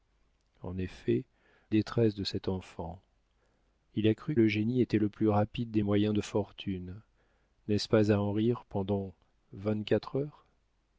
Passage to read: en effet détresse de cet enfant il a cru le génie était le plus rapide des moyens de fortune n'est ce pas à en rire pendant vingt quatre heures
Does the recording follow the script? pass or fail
pass